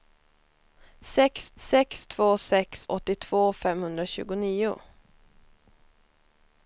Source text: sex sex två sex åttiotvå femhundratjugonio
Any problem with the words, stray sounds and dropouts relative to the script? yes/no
no